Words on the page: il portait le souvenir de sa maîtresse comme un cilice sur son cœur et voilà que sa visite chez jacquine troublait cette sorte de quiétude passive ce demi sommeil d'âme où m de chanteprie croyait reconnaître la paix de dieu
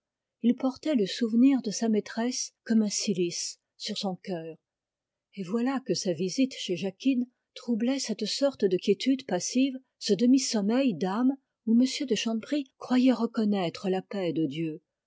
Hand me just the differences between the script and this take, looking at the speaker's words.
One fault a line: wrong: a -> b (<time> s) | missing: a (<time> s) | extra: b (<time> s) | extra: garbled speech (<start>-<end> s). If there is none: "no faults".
no faults